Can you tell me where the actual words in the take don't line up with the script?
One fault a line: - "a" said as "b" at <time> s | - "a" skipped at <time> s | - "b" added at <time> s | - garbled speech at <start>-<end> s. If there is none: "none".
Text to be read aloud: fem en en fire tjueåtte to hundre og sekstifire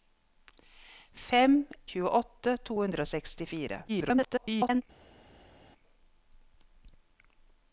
- "en en fire" skipped at 1.6 s
- garbled speech at 3.9-4.8 s